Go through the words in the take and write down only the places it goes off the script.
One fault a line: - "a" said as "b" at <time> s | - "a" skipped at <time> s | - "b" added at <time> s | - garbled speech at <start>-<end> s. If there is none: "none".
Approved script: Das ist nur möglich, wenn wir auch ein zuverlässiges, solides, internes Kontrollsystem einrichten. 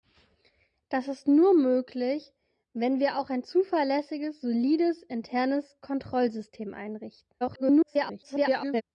- garbled speech at 7.4-8.8 s